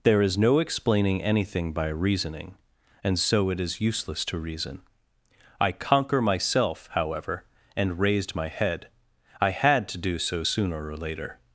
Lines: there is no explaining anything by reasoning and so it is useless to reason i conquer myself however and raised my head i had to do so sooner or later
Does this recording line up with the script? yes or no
yes